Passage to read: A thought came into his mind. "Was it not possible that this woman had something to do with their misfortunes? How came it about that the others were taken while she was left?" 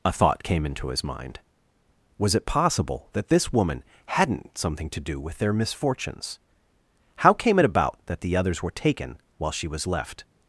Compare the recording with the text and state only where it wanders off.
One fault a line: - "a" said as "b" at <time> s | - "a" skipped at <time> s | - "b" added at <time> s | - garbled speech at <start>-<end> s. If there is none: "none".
- "not" skipped at 2.5 s
- "had" said as "hadn't" at 4.1 s